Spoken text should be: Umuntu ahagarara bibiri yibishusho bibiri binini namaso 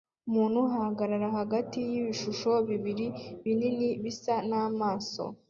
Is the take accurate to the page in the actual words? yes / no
no